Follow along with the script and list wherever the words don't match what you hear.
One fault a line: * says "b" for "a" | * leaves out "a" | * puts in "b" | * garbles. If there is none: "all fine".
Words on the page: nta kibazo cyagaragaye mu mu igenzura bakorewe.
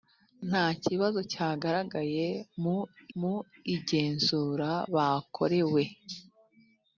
all fine